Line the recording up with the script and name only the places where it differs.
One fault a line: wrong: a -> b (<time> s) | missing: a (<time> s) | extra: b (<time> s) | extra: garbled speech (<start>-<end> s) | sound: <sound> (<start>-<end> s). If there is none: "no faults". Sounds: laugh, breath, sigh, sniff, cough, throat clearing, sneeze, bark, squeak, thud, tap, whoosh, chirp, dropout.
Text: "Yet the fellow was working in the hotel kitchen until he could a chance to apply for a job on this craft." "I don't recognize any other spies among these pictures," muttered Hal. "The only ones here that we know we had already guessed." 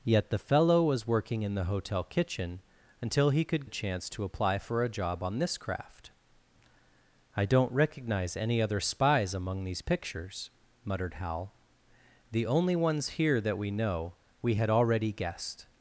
no faults